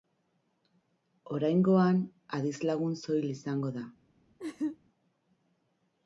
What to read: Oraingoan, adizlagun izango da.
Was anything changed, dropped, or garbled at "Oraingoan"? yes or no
no